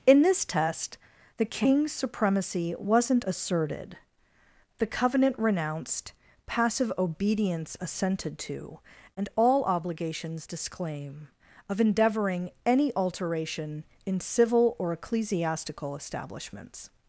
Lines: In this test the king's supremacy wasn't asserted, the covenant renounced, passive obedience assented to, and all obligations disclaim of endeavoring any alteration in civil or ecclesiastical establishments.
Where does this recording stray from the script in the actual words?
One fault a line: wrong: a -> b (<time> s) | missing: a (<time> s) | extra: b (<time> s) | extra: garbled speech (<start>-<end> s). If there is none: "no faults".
no faults